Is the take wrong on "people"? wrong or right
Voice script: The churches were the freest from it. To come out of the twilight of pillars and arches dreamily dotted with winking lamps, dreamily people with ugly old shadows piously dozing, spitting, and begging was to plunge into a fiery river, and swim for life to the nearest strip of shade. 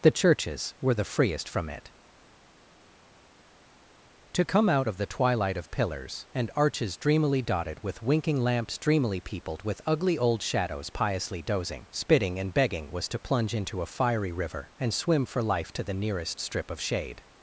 wrong